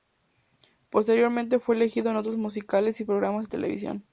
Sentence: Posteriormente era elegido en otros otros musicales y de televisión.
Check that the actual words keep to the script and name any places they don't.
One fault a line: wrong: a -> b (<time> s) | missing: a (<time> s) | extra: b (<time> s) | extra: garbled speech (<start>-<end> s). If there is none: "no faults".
wrong: era -> fue (1.6 s)
missing: otros (2.4 s)
extra: programas (3.0 s)